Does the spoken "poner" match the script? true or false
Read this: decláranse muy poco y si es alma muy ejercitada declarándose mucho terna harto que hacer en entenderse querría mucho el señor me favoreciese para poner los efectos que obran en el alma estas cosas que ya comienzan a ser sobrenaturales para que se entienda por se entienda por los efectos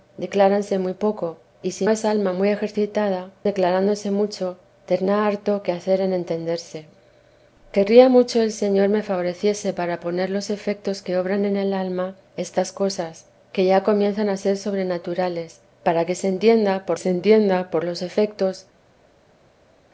true